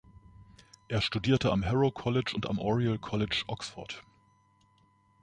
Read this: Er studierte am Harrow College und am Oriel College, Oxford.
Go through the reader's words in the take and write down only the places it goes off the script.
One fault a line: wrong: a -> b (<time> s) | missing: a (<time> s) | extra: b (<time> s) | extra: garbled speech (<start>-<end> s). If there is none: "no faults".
no faults